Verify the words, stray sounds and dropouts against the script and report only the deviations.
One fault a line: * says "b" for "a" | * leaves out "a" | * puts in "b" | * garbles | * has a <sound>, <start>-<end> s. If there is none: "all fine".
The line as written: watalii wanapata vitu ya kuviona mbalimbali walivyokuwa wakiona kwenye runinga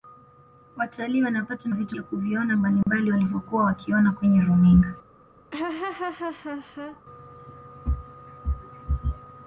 * has a dropout, 2.8-2.9 s
* has a laugh, 5.5-7.0 s